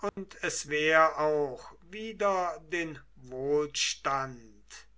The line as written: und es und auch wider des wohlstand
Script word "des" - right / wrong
wrong